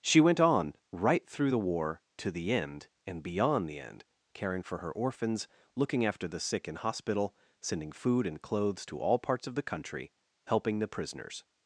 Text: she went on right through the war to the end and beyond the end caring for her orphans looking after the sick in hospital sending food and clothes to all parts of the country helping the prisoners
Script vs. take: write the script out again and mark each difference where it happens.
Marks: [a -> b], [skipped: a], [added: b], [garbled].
she went on right through the war to the end and beyond the end caring for her orphans looking after the sick in hospital sending food and clothes to all parts of the country helping the prisoners